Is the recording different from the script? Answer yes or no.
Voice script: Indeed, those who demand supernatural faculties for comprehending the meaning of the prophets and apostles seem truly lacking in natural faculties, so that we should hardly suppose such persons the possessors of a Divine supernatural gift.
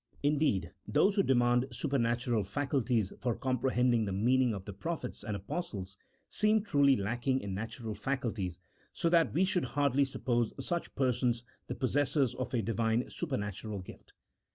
no